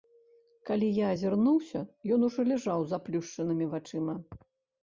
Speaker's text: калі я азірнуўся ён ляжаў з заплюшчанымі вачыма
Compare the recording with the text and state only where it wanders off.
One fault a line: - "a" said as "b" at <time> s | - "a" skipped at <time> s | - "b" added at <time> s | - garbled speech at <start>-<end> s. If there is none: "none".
- "ужо" added at 2.3 s